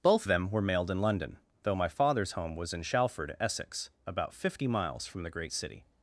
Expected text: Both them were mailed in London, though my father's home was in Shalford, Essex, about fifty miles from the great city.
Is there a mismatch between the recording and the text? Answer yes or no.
no